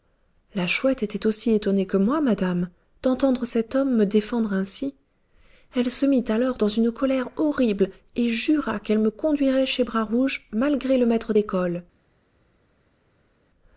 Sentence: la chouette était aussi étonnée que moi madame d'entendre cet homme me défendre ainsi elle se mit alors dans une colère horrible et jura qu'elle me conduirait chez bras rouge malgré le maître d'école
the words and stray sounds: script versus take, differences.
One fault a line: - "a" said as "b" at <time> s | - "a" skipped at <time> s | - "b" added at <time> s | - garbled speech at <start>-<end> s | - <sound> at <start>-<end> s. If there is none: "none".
none